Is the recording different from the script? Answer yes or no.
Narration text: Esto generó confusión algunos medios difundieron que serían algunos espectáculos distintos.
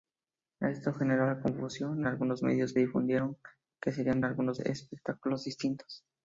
no